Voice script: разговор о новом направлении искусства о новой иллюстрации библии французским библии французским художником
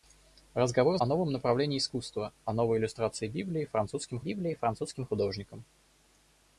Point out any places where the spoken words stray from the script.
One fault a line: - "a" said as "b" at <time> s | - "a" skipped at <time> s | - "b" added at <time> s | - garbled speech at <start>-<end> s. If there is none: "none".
none